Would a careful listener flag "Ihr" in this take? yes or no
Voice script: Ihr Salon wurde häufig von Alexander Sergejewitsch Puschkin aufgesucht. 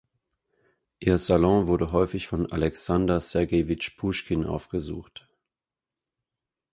no